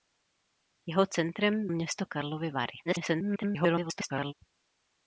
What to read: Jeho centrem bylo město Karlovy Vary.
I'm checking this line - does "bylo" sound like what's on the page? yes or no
no